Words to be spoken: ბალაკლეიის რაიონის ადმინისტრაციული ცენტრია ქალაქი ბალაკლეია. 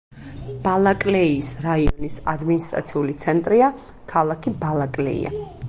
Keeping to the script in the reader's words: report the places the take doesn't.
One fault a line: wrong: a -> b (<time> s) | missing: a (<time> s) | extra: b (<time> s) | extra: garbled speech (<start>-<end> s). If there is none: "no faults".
no faults